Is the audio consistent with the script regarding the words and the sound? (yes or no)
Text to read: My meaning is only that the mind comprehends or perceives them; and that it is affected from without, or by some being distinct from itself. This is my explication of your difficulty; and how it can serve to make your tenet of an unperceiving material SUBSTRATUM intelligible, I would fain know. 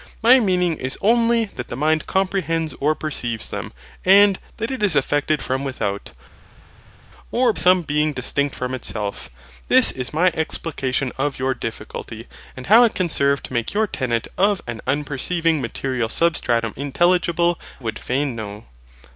no